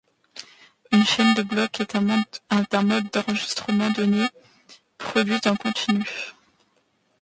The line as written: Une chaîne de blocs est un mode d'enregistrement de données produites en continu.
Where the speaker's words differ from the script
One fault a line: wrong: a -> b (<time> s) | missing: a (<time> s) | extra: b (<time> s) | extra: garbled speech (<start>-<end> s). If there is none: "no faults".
missing: de (3.9 s)